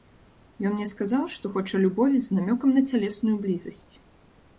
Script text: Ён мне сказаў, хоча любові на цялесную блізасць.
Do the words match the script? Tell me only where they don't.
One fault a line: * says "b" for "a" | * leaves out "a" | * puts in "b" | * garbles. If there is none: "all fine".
* puts in "што"
* puts in "з намёкам"